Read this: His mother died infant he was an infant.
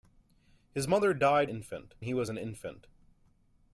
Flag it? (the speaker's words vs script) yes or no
no